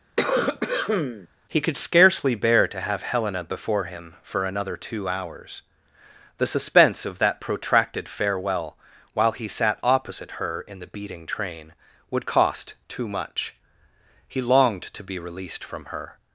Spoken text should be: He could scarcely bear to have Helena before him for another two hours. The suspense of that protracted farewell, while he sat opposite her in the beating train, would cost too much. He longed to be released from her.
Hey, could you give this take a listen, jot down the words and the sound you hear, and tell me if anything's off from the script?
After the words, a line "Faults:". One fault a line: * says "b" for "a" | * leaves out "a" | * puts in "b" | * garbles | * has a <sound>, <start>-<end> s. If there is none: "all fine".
He could scarcely bear to have Helena before him for another two hours. The suspense of that protracted farewell, while he sat opposite her in the beating train, would cost too much. He longed to be released from her.
Faults:
* has a cough, 0.2-1.3 s